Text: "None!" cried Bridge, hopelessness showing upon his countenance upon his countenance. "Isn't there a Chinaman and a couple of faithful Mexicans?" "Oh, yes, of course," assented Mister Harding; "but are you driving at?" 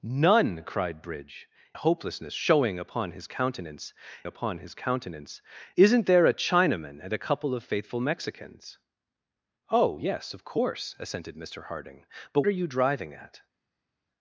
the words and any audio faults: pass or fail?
pass